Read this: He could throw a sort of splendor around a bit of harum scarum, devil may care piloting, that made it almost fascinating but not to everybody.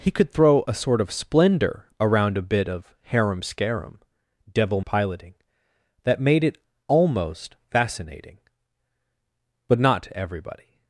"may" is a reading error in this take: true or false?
true